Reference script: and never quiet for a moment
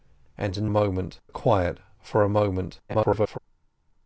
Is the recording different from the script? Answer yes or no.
yes